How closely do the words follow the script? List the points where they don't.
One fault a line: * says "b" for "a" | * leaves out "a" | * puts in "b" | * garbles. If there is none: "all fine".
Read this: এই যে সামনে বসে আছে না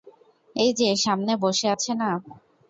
all fine